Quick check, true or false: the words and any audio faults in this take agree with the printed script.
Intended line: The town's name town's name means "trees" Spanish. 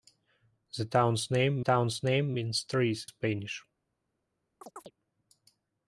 false